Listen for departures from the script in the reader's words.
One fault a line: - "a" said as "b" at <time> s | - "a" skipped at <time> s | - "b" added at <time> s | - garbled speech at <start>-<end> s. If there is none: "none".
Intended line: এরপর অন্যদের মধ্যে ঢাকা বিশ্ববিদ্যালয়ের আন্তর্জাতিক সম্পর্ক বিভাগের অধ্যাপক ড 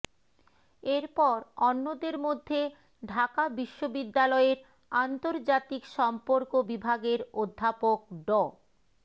none